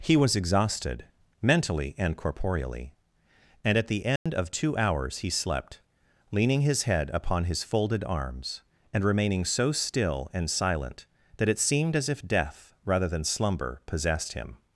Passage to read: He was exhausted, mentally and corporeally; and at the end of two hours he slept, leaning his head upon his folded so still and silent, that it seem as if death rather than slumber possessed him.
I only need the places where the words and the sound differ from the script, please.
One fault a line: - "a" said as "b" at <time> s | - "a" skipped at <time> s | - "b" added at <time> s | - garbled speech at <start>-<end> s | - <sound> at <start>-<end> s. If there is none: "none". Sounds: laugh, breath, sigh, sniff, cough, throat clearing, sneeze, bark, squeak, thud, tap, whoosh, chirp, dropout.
- dropout at 4.2-4.3 s
- "arms and remaining" added at 8.1 s
- "seem" said as "seemed" at 11.6 s